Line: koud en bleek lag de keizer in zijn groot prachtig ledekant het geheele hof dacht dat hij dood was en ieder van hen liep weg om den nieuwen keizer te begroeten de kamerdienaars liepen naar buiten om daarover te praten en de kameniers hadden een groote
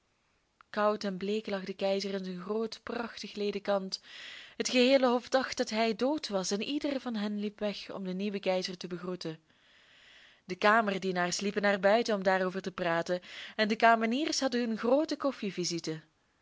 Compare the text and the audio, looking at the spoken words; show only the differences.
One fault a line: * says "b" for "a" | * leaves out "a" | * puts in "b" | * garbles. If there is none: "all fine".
all fine